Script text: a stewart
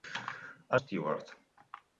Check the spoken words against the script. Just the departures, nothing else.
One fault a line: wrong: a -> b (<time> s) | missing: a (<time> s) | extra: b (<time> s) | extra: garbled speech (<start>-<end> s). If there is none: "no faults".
no faults